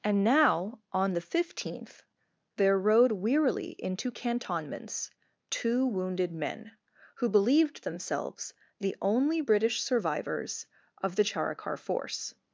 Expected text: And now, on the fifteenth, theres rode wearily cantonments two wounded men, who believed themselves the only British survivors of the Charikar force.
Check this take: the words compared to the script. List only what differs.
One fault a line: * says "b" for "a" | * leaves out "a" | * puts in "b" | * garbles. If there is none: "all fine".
* says "there" for "theres"
* puts in "into"